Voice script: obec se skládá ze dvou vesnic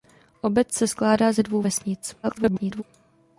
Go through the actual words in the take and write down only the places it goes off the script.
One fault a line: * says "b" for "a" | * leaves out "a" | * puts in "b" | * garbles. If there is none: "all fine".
* garbles